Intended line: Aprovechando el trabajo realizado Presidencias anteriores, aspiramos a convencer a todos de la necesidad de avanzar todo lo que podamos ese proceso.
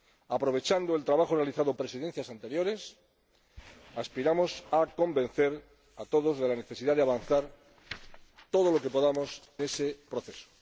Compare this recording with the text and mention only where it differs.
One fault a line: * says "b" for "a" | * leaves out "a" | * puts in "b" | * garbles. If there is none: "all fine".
all fine